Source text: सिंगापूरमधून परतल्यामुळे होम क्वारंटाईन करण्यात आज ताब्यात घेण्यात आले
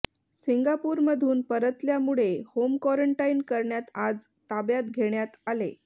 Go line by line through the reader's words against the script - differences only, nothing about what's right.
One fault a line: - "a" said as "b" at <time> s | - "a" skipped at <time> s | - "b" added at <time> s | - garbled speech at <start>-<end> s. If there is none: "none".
none